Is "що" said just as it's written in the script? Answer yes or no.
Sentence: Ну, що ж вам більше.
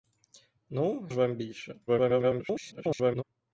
no